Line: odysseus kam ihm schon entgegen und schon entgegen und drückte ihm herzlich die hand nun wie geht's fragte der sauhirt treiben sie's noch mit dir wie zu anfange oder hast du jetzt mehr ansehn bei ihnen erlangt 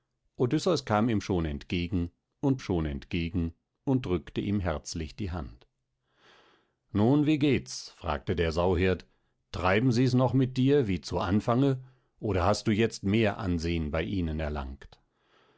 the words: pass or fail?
pass